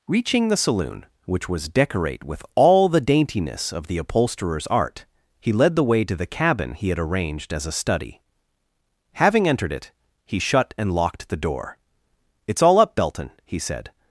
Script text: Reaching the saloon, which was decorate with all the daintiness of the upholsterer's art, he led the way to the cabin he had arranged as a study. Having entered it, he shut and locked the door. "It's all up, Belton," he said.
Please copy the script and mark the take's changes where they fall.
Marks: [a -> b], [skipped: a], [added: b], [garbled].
Reaching the saloon, which was decorate with all the daintiness of the upholsterer's art, he led the way to the cabin he had arranged as a study. Having entered it, he shut and locked the door. "It's all up, Belton," he said.